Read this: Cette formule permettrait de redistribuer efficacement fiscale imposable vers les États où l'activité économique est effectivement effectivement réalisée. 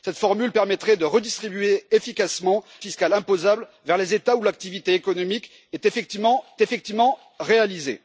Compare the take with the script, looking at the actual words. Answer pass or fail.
pass